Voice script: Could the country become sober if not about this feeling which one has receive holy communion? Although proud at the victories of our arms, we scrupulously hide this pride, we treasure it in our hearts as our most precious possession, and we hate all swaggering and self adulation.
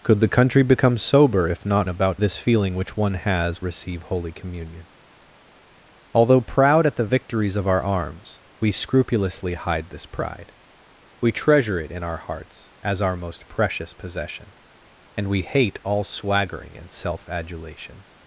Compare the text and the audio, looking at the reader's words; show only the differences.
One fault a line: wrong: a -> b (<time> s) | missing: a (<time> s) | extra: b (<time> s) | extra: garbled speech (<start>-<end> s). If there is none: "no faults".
no faults